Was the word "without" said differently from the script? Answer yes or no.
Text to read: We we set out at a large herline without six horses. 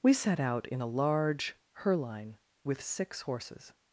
yes